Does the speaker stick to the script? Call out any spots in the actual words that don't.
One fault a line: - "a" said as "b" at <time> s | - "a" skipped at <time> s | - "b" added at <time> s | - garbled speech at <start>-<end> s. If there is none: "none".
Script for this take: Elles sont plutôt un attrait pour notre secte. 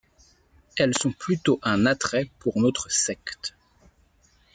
none